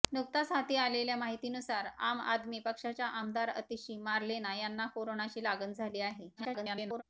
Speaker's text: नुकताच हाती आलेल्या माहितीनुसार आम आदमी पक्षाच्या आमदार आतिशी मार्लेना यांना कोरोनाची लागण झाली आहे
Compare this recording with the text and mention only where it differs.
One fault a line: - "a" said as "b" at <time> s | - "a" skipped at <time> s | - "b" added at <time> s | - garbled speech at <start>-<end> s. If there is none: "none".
- garbled speech at 6.4-7.0 s